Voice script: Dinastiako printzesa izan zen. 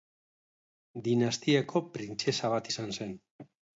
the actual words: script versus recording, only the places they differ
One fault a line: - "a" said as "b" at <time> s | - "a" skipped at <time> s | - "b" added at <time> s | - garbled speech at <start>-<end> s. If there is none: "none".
- "bat" added at 2.5 s